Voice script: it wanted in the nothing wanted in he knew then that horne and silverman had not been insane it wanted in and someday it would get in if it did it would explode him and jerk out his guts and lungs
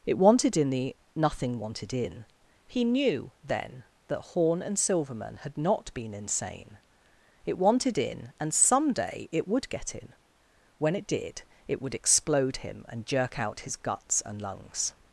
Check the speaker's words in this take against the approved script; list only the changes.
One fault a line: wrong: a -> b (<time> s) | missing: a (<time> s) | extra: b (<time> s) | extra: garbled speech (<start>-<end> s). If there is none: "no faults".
wrong: if -> when (10.8 s)